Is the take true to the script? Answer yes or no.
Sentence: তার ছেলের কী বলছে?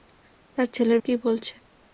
yes